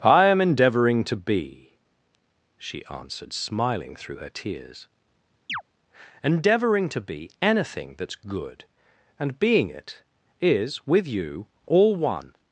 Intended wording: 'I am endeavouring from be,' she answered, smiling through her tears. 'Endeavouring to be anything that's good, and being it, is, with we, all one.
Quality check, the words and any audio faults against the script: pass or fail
fail